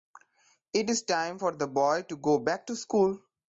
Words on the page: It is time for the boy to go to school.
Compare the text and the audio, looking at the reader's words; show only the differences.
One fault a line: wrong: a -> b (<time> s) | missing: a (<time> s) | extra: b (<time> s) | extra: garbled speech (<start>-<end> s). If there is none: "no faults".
extra: back (2.4 s)